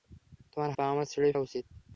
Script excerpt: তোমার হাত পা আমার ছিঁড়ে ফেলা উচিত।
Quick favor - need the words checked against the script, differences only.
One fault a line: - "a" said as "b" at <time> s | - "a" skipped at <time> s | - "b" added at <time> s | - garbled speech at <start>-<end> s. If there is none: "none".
- "হাত" skipped at 0.7 s
- "ফেলা" skipped at 1.3 s